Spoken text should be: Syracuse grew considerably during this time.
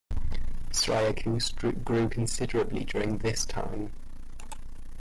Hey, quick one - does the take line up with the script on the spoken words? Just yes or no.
yes